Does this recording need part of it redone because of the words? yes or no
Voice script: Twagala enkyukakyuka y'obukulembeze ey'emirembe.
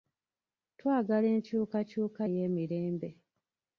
yes